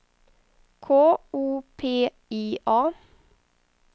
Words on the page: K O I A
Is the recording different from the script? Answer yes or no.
yes